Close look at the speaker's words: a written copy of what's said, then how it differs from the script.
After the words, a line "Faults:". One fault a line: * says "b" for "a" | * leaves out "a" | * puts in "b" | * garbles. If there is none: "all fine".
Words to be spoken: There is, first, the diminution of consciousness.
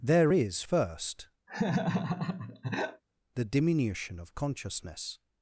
There is, first, the diminution of consciousness.
Faults:
all fine